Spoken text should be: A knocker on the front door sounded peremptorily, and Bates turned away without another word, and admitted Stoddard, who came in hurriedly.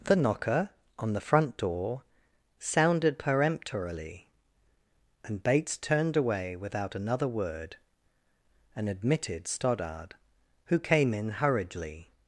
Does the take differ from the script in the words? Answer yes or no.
yes